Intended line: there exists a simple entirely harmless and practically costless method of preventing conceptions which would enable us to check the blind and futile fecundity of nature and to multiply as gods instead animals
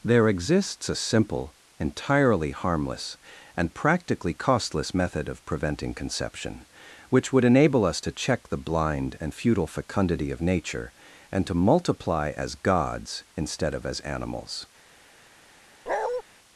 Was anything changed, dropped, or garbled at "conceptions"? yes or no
yes